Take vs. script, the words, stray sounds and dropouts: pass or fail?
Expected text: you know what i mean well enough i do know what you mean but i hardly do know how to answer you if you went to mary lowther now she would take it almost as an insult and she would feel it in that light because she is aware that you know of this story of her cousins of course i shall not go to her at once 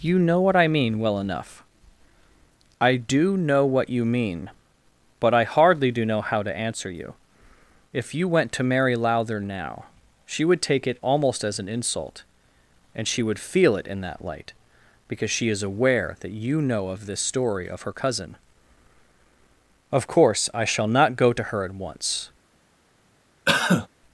fail